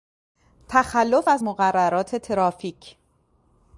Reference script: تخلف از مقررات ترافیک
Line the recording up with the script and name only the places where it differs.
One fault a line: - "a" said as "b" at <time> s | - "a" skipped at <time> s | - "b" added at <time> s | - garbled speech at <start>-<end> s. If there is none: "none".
none